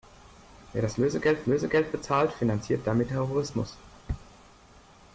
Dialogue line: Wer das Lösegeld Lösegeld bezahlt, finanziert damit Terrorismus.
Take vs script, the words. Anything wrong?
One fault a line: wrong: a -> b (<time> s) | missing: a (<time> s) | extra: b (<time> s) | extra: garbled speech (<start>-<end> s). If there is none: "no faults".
no faults